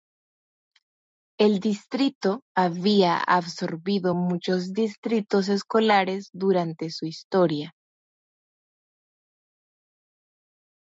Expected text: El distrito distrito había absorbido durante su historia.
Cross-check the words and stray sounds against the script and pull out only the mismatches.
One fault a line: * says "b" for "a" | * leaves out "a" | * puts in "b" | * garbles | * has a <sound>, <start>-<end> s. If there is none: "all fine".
* leaves out "distrito"
* puts in "muchos distritos escolares"